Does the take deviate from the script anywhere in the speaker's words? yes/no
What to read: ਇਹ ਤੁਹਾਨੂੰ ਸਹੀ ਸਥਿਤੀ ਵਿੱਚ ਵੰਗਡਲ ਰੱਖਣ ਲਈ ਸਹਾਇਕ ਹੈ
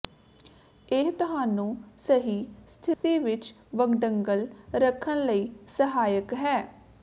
no